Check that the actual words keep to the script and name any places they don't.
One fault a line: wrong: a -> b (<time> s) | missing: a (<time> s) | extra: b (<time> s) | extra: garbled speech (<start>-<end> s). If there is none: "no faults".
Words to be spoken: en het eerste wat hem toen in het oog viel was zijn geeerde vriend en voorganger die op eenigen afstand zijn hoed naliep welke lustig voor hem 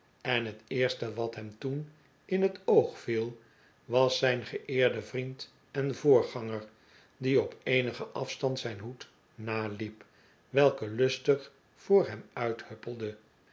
no faults